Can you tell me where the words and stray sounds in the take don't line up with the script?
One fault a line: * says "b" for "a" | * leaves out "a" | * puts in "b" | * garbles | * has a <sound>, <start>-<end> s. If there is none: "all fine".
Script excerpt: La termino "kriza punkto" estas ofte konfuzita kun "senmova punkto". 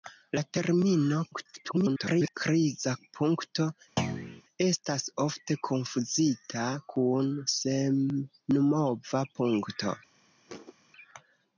* garbles
* has a thud, 4.0-4.4 s
* has a thud, 10.5-10.7 s